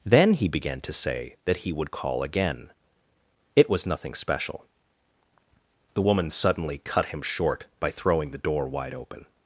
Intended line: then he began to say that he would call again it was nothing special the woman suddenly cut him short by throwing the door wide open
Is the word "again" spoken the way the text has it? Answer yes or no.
yes